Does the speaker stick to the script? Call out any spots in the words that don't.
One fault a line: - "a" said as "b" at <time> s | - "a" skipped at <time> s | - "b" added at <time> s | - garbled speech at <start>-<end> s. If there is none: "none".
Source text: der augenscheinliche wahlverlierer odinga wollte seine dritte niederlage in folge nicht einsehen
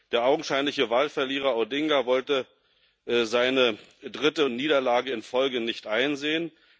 none